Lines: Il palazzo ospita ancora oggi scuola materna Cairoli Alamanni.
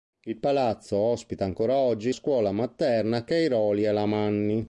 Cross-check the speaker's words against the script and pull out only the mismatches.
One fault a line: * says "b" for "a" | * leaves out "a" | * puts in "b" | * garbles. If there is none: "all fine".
all fine